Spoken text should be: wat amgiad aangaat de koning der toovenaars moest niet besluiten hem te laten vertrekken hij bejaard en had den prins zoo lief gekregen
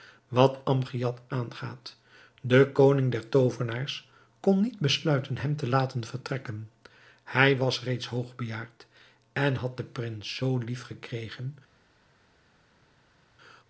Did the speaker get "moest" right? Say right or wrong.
wrong